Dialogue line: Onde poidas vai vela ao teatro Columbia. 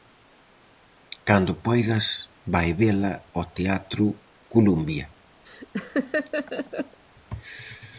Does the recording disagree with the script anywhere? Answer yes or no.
yes